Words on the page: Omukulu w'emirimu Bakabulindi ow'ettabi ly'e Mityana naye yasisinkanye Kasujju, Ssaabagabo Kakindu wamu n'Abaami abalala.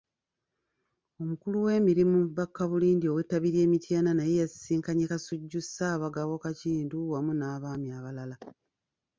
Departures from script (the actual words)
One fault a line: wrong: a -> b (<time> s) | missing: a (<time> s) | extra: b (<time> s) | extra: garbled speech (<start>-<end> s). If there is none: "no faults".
no faults